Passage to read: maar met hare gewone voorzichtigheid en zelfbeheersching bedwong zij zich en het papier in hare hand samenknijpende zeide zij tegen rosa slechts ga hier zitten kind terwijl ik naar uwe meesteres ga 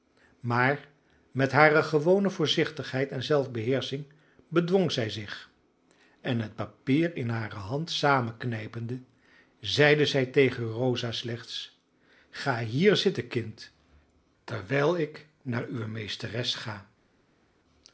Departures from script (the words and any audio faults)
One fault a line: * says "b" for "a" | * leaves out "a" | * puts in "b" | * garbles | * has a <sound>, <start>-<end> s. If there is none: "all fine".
all fine